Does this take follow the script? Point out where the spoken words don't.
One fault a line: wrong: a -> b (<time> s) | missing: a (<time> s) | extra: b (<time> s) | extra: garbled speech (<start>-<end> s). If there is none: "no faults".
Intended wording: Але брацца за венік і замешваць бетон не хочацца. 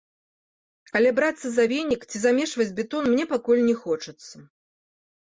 wrong: і -> ці (2.1 s)
extra: мне пакуль (3.2 s)